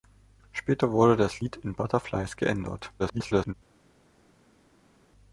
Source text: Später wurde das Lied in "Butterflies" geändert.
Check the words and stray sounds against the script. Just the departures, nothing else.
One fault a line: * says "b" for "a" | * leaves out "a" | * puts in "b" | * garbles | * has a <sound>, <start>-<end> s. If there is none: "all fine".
* garbles